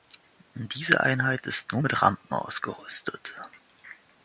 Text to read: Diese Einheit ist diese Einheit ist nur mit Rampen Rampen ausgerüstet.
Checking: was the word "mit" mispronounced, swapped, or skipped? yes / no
no